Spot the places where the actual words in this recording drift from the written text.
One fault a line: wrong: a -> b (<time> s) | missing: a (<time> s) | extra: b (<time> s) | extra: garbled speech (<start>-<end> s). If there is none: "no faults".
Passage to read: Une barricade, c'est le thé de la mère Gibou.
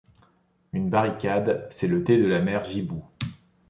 no faults